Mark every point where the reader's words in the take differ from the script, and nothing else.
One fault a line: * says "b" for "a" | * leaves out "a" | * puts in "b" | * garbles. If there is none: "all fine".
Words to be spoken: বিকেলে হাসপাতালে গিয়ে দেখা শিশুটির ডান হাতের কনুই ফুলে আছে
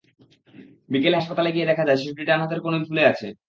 * puts in "যায়"